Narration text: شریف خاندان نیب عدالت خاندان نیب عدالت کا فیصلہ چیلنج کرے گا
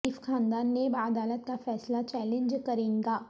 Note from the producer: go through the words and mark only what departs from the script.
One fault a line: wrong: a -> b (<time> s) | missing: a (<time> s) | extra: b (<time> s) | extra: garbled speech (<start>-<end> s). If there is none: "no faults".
missing: خاندان نیب عدالت (1.4 s)